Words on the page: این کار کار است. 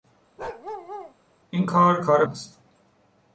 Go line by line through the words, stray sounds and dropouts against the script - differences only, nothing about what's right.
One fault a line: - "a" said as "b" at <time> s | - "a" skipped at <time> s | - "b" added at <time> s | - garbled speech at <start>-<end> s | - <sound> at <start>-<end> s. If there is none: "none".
- bark at 0.4-1.1 s